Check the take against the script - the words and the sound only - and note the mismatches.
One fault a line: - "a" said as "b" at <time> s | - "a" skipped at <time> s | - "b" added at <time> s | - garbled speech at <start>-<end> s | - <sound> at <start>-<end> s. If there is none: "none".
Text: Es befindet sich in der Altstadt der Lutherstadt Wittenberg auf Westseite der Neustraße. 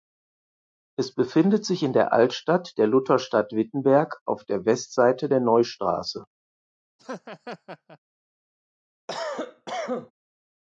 - "der" added at 4.5 s
- laugh at 7.0-8.0 s
- cough at 9.1-10.1 s